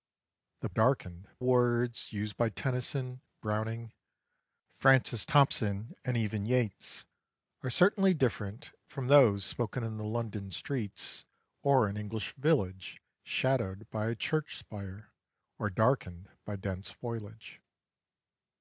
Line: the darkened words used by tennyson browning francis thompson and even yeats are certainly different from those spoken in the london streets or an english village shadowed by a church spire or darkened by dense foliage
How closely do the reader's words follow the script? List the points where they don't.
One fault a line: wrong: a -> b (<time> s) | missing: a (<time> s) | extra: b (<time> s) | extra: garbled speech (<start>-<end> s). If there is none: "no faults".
no faults